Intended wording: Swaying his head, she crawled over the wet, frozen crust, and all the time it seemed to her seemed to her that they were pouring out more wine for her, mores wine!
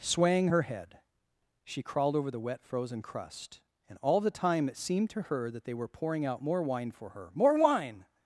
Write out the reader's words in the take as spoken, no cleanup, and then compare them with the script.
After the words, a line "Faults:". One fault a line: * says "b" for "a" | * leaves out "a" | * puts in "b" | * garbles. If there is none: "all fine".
Swaying her head, she crawled over the wet, frozen crust, and all the time it seemed to her that they were pouring out more wine for her, more wine!
Faults:
* says "her" for "his"
* leaves out "seemed to her"
* says "more" for "mores"